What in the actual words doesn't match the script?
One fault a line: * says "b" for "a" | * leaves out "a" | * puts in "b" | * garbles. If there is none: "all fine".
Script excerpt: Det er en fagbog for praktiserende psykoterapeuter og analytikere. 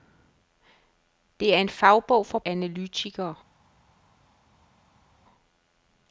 * leaves out "praktiserende psykoterapeuter og"